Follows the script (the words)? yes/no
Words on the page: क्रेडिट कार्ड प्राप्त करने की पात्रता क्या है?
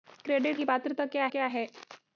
no